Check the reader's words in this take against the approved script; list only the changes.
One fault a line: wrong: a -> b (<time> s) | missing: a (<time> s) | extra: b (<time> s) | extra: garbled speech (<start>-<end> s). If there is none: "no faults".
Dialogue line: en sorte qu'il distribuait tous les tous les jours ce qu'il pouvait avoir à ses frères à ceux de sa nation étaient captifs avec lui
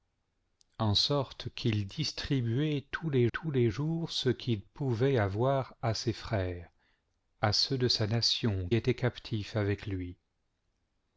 no faults